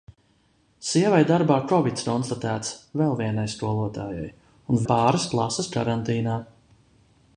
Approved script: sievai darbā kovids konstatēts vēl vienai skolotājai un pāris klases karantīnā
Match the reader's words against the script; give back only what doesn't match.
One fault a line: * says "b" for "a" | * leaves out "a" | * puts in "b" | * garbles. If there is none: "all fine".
all fine